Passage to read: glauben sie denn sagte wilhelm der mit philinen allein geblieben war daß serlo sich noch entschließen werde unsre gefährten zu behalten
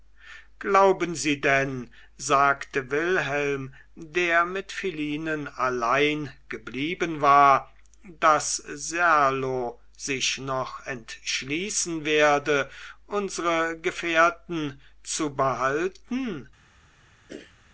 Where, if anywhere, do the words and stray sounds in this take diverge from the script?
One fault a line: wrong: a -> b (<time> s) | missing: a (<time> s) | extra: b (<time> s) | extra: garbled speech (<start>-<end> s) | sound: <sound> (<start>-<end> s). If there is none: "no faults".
sound: throat clearing (17.3-17.6 s)